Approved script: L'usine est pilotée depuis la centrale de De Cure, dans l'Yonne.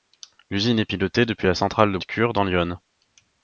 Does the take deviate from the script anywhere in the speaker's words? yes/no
no